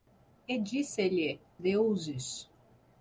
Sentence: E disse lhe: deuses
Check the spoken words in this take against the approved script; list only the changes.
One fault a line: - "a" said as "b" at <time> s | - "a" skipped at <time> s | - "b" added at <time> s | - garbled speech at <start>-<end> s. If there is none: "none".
none